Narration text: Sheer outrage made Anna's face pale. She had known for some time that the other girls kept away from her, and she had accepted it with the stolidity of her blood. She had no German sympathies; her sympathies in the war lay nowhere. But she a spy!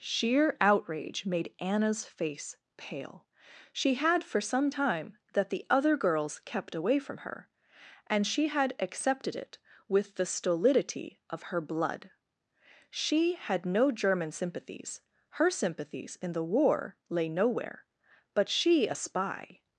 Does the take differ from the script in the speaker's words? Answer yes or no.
yes